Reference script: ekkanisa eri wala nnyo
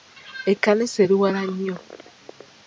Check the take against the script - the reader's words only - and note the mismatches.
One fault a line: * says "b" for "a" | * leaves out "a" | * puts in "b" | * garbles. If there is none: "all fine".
all fine